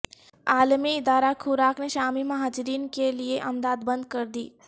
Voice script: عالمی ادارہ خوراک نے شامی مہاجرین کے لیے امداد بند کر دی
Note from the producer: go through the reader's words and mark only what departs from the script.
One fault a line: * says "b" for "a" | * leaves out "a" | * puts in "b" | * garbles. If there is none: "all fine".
all fine